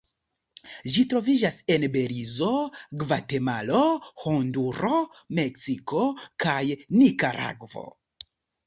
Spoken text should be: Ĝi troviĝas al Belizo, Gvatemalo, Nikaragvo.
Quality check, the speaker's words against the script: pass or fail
fail